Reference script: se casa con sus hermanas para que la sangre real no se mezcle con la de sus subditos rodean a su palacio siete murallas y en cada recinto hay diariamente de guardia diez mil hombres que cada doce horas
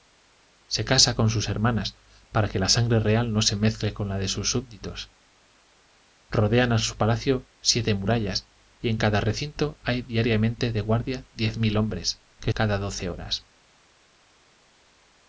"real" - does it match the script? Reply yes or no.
yes